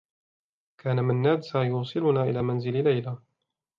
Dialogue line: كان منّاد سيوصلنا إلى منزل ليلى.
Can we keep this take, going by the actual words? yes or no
yes